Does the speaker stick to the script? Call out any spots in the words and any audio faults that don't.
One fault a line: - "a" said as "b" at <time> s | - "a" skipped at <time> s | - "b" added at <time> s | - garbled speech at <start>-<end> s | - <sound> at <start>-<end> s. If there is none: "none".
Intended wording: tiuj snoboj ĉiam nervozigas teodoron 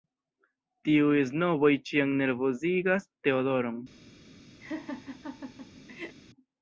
- laugh at 4.6-6.2 s